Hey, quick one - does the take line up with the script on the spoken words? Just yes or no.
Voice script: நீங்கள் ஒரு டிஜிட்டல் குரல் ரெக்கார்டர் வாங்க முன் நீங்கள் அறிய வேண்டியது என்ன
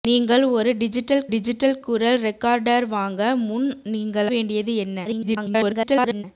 no